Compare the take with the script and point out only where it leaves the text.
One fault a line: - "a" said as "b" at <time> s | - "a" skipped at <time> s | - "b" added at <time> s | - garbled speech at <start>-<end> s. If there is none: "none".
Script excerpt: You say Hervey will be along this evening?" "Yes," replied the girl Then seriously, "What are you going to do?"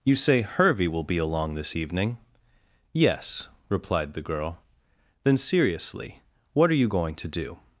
none